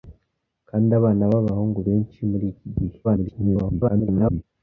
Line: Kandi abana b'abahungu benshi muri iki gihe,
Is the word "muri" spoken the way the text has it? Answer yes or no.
yes